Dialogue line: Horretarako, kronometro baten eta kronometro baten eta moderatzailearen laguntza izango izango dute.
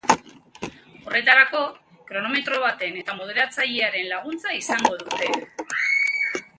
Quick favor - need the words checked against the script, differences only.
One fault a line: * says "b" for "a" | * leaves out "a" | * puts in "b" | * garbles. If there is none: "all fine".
* leaves out "kronometro baten eta"
* leaves out "izango"